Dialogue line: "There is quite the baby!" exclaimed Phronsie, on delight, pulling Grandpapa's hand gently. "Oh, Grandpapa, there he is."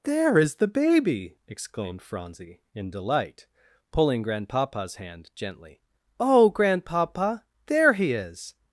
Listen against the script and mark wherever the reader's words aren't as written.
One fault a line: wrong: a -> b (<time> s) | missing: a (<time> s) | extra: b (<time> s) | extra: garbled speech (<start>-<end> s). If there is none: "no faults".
missing: quite (0.6 s)
wrong: on -> in (2.7 s)